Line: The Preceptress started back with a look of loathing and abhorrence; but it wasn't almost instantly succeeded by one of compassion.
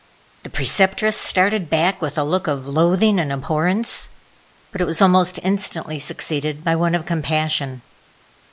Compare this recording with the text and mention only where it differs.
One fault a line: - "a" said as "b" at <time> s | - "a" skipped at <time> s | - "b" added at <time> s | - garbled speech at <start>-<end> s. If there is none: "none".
- "wasn't" said as "was" at 4.8 s